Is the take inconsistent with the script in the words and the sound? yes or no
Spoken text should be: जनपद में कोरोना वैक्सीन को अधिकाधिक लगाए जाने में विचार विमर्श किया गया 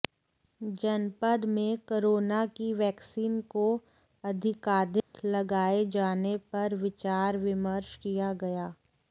yes